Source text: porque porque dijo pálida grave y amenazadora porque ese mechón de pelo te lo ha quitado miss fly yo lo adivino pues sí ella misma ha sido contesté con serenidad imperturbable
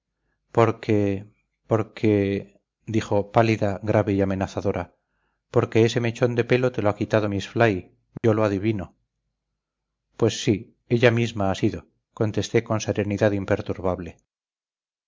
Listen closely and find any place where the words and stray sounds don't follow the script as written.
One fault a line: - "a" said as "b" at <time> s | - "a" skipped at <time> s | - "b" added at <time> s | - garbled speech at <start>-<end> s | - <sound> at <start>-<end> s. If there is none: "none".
- dropout at 8.2-8.2 s